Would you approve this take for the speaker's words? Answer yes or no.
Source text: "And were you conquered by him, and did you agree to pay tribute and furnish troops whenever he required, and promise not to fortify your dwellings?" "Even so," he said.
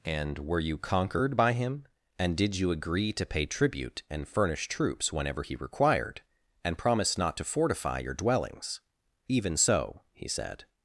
yes